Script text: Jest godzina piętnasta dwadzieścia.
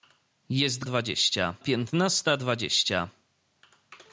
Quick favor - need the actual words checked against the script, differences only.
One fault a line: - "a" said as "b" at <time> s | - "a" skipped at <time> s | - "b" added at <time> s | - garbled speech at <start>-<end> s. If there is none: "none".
- "godzina" said as "dwadzieścia" at 0.8 s